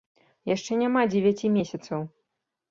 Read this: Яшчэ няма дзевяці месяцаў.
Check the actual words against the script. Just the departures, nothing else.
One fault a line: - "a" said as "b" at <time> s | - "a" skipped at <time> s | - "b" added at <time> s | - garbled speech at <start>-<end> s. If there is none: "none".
none